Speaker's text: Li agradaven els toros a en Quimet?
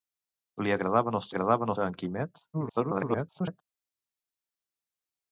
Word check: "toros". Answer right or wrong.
wrong